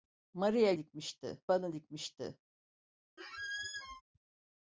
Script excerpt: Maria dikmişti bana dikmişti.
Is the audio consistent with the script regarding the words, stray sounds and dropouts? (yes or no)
no